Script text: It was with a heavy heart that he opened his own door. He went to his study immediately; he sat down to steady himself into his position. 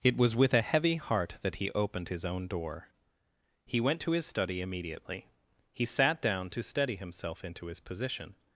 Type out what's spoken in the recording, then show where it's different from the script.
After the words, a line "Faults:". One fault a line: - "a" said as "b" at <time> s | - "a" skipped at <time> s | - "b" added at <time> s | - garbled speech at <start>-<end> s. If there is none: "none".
It was with a heavy heart that he opened his own door. He went to his study immediately; he sat down to steady himself into his position.
Faults:
none